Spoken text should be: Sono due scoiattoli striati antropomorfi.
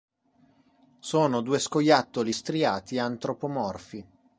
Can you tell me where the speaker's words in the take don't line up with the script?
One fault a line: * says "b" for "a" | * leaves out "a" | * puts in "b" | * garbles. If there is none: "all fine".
all fine